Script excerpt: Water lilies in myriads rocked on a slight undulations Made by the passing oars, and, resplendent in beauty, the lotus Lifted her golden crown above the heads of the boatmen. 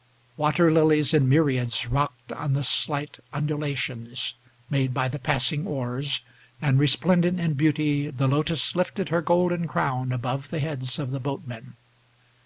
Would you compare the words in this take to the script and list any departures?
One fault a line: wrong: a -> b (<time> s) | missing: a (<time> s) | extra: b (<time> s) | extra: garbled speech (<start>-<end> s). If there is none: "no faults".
wrong: a -> the (2.5 s)